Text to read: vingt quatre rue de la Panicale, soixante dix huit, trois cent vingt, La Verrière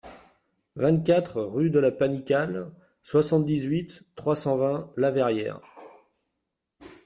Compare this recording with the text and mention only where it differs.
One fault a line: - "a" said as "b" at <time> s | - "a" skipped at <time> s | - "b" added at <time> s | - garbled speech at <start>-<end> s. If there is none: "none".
none